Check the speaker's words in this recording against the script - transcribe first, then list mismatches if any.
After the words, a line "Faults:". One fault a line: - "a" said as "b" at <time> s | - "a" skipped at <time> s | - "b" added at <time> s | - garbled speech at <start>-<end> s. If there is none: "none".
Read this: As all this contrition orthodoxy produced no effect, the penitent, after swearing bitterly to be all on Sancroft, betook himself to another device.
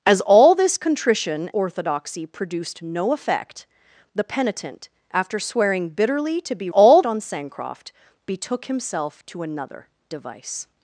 As all this contrition orthodoxy produced no effect, the penitent, after swearing bitterly to be all on Sancroft, betook himself to another device.
Faults:
none